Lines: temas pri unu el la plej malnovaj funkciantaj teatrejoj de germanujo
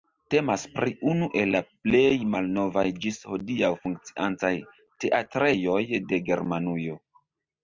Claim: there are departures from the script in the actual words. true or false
true